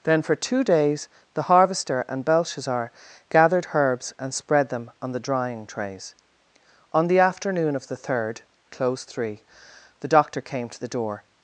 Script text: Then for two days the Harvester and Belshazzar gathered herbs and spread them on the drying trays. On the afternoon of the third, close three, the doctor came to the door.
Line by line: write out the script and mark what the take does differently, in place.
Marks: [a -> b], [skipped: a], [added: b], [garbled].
Then for two days the Harvester and Belshazzar gathered herbs and spread them on the drying trays. On the afternoon of the third, close three, the doctor came to the door.